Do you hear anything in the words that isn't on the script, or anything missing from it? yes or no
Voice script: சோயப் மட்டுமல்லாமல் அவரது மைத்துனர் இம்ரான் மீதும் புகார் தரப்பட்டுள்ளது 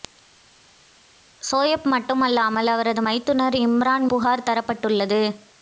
yes